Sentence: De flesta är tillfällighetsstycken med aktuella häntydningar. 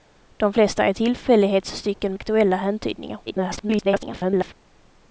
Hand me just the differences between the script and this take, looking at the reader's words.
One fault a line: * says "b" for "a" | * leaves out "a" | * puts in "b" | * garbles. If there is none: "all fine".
* leaves out "med"
* garbles